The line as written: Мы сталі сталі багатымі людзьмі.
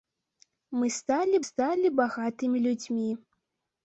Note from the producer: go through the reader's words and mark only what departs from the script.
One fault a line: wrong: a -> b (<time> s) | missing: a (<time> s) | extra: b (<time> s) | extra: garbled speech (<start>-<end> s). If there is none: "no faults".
no faults